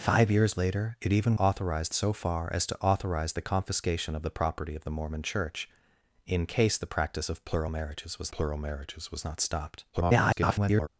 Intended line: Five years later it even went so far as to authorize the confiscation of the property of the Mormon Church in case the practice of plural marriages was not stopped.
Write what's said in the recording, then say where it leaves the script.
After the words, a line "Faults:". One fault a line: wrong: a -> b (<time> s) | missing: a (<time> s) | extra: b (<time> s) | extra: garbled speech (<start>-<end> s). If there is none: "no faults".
Five years later it even authorize so far as to authorize the confiscation of the property of the Mormon Church in case the practice of plural marriages was plural marriages was not stopped. [garbled]
Faults:
wrong: went -> authorize (1.4 s)
extra: plural marriages was (8.3 s)
extra: garbled speech (9.9-10.9 s)